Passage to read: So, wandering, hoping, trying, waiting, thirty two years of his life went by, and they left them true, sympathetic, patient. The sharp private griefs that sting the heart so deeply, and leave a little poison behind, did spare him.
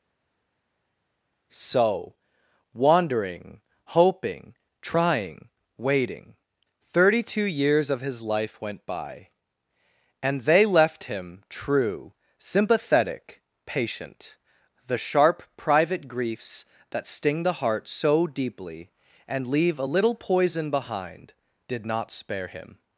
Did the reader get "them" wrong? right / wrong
wrong